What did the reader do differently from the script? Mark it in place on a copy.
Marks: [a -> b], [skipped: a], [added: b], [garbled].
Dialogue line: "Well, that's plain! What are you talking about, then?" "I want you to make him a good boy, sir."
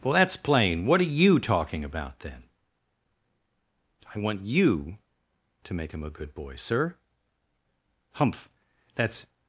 "Well, that's plain! What are you talking about, then?" "I want you to make him a good boy, sir." [added: Humph that's]